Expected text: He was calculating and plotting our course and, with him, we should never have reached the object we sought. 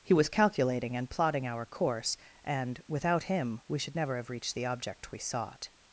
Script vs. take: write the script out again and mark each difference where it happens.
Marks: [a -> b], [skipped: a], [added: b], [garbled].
He was calculating and plotting our course and, [with -> without] him, we should never have reached the object we sought.